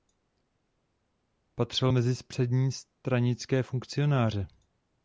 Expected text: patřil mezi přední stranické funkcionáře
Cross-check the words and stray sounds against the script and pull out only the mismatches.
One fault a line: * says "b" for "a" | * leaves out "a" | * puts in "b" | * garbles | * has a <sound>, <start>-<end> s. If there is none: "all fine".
all fine